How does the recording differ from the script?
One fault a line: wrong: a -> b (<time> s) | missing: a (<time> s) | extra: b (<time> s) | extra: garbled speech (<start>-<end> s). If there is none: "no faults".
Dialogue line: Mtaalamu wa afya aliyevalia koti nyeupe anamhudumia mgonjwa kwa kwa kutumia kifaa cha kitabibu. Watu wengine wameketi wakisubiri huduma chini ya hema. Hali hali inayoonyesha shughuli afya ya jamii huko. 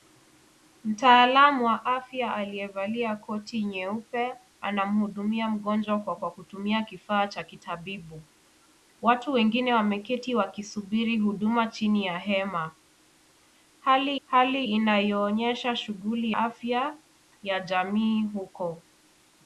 no faults